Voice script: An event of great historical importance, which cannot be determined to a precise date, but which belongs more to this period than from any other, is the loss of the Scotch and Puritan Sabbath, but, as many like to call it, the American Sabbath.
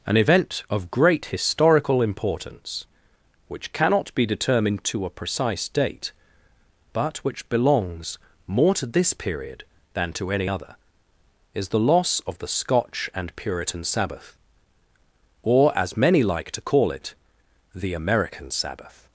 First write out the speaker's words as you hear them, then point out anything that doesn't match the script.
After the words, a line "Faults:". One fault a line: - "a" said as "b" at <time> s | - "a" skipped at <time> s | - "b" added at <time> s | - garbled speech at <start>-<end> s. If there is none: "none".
An event of great historical importance, which cannot be determined to a precise date, but which belongs more to this period than to any other, is the loss of the Scotch and Puritan Sabbath, or, as many like to call it, the American Sabbath.
Faults:
- "from" said as "to" at 10.1 s
- "but" said as "or" at 15.4 s